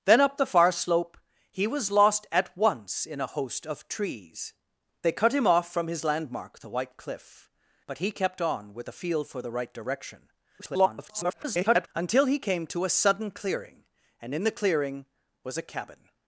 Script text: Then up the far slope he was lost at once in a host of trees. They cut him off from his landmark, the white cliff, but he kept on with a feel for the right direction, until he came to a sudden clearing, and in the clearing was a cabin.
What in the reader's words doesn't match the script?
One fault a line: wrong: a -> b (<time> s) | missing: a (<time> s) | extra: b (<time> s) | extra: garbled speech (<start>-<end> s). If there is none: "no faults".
extra: garbled speech (10.6-11.9 s)